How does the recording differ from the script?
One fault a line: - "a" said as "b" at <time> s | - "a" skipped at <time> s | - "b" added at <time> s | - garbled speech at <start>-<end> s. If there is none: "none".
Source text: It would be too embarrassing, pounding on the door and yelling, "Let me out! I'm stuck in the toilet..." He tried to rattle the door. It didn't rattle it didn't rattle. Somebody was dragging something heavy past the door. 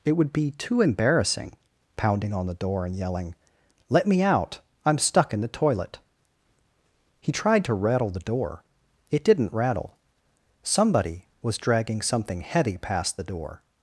- "it didn't rattle" skipped at 10.0 s